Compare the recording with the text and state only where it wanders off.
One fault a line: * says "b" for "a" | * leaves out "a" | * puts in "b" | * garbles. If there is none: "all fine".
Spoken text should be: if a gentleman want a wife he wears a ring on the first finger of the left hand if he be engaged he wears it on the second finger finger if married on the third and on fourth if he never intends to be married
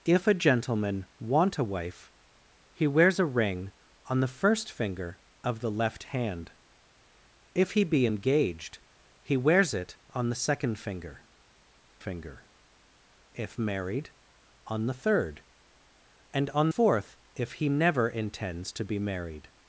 all fine